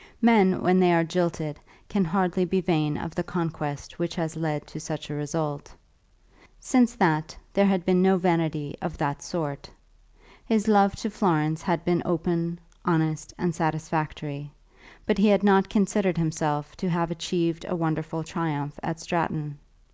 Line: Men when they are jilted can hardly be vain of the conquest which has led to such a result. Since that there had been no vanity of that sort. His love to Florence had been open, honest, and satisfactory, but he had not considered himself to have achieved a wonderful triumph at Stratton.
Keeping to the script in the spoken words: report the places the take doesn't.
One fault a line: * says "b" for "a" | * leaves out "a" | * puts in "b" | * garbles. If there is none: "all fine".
all fine